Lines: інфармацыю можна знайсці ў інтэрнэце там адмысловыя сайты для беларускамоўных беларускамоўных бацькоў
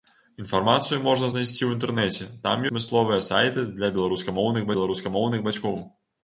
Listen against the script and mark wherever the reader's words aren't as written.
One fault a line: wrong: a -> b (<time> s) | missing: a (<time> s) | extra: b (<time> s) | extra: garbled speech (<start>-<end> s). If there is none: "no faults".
no faults